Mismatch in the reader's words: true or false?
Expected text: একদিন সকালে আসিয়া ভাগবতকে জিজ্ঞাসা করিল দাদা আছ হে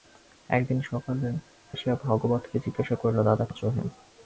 false